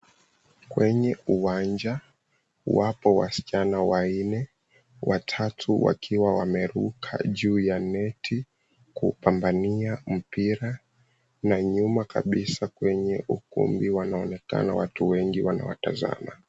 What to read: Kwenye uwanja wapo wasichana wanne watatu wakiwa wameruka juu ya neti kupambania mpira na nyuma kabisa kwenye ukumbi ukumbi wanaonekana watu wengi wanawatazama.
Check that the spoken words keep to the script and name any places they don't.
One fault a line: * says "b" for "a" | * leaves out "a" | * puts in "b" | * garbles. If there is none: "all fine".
* leaves out "ukumbi"